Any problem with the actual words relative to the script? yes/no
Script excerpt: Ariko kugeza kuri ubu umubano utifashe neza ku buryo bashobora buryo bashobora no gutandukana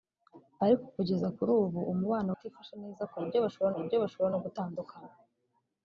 no